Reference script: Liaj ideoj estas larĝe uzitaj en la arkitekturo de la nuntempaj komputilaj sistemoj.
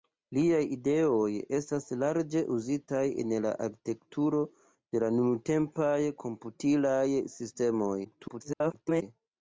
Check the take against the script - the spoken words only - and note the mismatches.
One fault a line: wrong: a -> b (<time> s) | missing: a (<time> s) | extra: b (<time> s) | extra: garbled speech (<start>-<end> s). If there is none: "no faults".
extra: garbled speech (8.0-9.0 s)